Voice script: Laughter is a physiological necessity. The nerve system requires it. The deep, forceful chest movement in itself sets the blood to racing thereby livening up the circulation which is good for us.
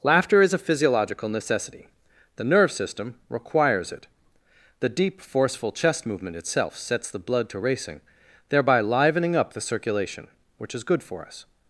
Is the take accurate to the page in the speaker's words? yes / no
no